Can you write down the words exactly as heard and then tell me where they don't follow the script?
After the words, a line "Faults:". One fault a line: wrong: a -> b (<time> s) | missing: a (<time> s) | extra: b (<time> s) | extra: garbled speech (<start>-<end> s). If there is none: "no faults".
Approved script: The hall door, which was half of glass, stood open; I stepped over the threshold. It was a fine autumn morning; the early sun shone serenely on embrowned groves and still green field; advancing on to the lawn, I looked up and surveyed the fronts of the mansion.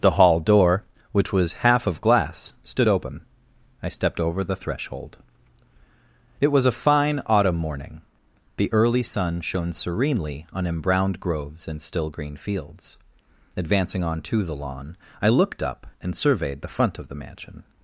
The hall door, which was half of glass, stood open; I stepped over the threshold. It was a fine autumn morning; the early sun shone serenely on embrowned groves and still green fields; advancing on to the lawn, I looked up and surveyed the front of the mansion.
Faults:
wrong: field -> fields (12.4 s)
wrong: fronts -> front (16.7 s)